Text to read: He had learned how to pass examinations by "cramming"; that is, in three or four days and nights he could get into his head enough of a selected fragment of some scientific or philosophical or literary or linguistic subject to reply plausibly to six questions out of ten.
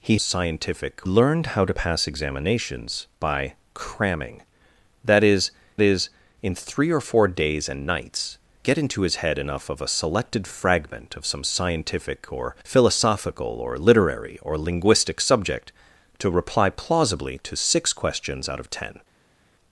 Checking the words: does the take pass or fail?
fail